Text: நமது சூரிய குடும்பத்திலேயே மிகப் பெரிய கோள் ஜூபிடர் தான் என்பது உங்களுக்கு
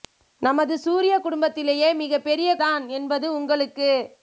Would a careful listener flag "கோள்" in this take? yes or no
yes